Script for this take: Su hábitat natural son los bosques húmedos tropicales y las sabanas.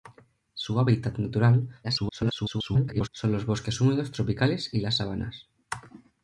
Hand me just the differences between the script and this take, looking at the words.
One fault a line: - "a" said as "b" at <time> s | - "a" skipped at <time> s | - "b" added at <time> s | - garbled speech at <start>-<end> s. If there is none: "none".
- garbled speech at 1.8-3.1 s